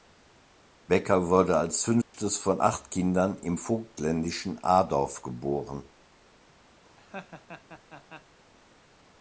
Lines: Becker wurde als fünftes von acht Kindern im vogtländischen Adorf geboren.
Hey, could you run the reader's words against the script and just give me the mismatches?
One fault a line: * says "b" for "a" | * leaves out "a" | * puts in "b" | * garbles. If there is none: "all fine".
all fine